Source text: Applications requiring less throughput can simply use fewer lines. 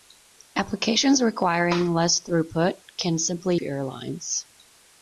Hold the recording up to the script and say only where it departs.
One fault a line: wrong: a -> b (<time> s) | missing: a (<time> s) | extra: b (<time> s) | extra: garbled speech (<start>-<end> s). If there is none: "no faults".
missing: use (3.6 s)